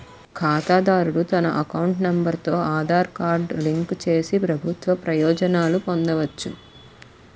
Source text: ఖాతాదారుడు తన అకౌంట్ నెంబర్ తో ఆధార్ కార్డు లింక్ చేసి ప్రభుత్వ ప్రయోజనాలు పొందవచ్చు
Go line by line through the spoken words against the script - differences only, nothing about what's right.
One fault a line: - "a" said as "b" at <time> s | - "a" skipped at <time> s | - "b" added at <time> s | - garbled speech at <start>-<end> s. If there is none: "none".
none